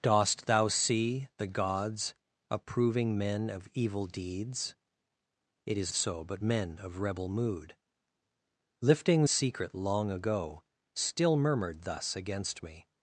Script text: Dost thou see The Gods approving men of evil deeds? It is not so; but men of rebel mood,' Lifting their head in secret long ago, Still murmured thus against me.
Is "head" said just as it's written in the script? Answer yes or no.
no